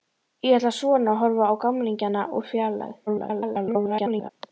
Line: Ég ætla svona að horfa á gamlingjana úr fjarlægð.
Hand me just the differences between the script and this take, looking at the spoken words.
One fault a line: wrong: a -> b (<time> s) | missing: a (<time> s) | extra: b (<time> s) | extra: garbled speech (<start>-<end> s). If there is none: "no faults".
extra: garbled speech (3.1-4.3 s)